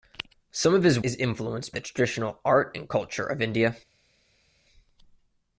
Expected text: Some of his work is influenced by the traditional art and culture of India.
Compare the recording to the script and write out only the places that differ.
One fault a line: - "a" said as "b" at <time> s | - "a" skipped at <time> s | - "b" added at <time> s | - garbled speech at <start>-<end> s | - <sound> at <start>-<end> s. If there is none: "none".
- "work" skipped at 1.0 s
- "by" skipped at 1.7 s